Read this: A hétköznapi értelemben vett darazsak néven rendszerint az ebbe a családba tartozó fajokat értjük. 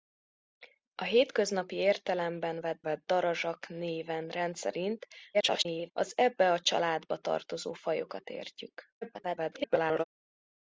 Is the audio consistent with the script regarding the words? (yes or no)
no